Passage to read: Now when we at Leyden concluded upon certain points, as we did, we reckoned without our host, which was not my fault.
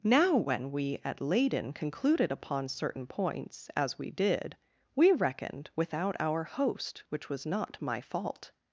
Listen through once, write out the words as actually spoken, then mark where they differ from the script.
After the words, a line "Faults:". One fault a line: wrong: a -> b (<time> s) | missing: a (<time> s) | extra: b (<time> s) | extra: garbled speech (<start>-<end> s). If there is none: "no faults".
Now when we at Leyden concluded upon certain points, as we did, we reckoned without our host, which was not my fault.
Faults:
no faults